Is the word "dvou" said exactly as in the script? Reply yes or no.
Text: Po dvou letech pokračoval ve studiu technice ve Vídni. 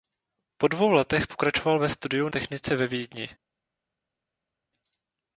yes